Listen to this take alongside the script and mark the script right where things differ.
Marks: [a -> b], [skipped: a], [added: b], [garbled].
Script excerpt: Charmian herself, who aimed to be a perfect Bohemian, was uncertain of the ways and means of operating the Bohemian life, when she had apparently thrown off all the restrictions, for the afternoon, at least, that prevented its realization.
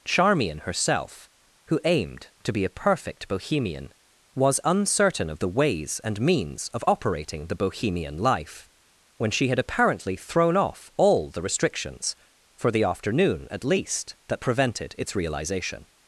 Charmian herself, who aimed to be a perfect Bohemian, was uncertain of the ways and means of operating the Bohemian life, when she had apparently thrown off all the restrictions, for the afternoon, at least, that prevented its realization.